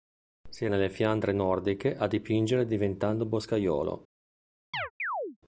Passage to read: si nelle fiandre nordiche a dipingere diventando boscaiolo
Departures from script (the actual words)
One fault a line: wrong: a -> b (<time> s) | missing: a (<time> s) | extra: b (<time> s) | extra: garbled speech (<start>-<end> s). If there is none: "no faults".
no faults